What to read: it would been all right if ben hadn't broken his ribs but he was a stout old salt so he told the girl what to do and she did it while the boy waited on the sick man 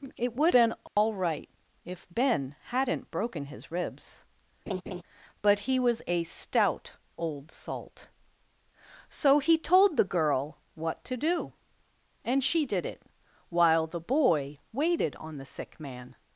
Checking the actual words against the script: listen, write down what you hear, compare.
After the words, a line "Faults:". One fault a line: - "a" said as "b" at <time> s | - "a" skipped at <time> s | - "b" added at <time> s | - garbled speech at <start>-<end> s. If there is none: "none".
it would been all right if ben hadn't broken his ribs but he was a stout old salt so he told the girl what to do and she did it while the boy waited on the sick man
Faults:
none